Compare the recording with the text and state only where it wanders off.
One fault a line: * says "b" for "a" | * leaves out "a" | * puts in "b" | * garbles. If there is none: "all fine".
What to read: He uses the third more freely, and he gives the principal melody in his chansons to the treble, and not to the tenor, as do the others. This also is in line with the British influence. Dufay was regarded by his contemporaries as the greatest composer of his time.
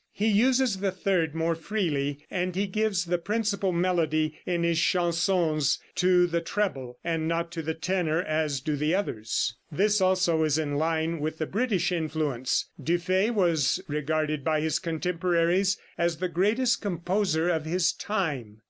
all fine